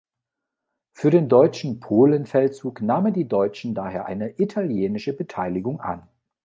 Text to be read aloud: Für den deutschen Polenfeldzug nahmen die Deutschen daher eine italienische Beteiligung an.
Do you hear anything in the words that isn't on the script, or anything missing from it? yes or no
no